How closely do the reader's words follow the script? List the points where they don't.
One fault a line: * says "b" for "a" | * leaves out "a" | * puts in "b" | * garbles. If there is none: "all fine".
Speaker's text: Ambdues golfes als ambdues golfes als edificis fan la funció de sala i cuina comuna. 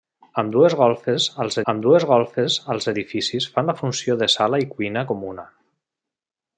all fine